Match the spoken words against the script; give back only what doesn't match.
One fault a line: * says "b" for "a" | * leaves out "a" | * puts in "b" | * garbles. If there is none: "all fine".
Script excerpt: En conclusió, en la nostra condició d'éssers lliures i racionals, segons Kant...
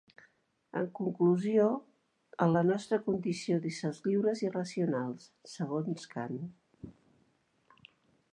all fine